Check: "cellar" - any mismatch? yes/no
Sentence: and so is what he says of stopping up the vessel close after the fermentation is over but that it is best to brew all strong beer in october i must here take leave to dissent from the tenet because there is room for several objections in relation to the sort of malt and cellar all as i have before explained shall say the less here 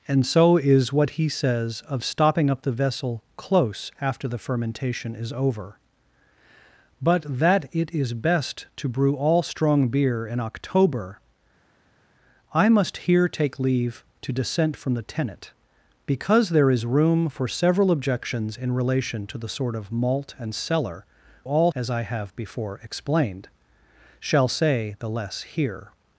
no